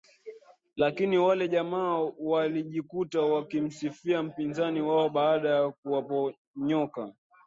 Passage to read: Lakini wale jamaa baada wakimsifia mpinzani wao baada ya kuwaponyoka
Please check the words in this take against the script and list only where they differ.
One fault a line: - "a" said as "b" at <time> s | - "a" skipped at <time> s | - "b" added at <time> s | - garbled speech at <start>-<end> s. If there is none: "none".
- "baada" said as "walijikuta" at 2.2 s